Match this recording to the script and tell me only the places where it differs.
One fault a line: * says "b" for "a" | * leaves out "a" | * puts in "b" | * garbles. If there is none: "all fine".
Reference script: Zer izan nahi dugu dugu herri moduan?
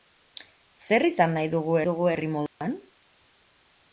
all fine